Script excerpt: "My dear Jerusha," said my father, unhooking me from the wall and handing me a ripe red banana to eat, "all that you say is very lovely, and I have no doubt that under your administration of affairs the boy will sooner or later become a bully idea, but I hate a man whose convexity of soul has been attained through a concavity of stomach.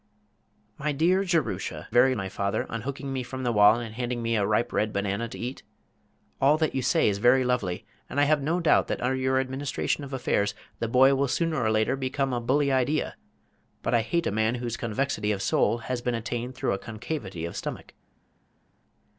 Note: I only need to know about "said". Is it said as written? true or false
false